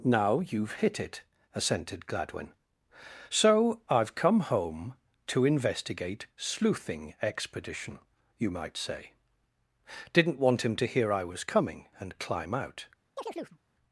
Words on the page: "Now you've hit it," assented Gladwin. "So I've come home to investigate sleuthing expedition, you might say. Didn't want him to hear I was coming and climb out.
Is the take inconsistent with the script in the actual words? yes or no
no